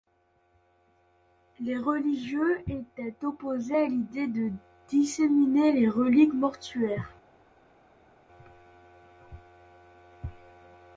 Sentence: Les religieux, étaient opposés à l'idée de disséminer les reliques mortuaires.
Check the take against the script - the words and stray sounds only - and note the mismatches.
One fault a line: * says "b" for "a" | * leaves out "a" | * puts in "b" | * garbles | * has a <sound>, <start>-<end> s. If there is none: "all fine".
all fine